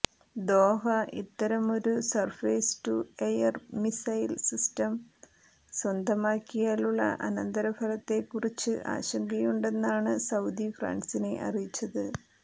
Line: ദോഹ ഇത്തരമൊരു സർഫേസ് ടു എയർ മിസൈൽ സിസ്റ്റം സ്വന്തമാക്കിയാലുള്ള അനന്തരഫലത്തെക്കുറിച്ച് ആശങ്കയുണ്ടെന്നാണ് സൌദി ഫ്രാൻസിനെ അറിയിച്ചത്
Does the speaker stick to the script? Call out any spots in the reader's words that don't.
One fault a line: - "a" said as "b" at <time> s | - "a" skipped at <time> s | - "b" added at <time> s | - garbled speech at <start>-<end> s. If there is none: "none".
none